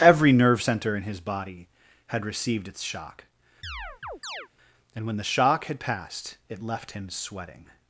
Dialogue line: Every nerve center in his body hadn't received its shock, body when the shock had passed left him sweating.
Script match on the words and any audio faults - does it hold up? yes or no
no